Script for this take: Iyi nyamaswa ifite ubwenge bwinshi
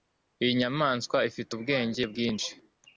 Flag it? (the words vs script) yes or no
no